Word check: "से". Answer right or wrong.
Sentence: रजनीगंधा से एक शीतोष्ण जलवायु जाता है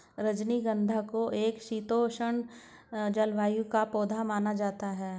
wrong